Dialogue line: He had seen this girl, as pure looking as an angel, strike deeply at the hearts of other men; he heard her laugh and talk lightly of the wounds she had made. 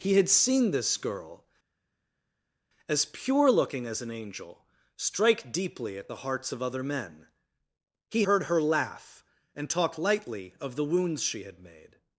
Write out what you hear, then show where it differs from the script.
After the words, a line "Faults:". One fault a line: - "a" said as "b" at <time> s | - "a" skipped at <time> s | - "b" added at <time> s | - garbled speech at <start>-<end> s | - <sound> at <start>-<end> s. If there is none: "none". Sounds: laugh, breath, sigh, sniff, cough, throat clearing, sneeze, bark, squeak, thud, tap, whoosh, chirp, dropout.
He had seen this girl, as pure looking as an angel, strike deeply at the hearts of other men; he heard her laugh and talk lightly of the wounds she had made.
Faults:
none